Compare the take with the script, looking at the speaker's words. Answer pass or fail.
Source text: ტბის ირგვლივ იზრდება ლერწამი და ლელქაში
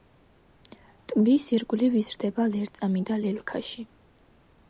pass